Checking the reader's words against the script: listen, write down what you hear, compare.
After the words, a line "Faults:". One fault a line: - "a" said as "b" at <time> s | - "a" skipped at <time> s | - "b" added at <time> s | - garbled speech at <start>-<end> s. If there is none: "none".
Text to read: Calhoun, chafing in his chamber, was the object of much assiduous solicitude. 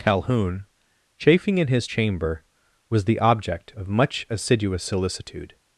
Calhoun, chafing in his chamber, was the object of much assiduous solicitude.
Faults:
none